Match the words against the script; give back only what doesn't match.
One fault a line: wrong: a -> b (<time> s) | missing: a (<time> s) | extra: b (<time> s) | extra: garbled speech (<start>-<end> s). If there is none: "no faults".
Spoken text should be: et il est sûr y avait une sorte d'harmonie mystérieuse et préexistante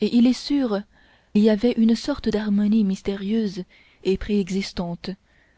no faults